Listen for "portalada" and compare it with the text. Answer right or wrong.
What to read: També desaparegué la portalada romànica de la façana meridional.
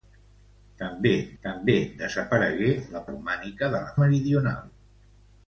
wrong